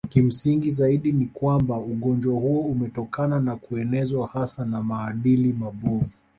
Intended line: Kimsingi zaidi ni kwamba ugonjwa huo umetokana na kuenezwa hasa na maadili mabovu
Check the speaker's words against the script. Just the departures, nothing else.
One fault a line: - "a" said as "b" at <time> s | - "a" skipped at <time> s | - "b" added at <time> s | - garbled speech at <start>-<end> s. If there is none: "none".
none